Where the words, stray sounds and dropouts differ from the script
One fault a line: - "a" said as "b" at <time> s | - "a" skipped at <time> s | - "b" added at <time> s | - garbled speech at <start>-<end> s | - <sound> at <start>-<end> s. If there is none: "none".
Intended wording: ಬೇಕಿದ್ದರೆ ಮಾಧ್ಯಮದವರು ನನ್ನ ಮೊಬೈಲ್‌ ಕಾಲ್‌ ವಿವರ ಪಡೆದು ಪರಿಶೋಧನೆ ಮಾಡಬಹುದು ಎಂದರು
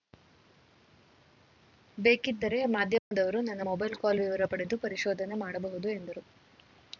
- dropout at 3.0-3.1 s